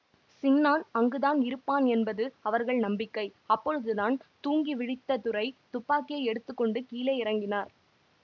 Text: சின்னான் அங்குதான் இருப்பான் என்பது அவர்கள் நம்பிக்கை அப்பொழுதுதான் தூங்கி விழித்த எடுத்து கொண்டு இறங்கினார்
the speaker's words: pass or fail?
fail